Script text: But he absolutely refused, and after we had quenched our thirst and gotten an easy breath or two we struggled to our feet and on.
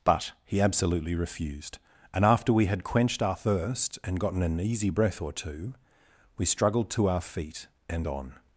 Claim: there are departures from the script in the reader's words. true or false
false